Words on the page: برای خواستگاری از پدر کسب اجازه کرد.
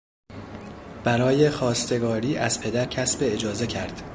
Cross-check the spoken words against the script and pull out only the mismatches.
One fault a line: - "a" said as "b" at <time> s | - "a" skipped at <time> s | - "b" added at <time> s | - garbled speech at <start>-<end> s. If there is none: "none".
none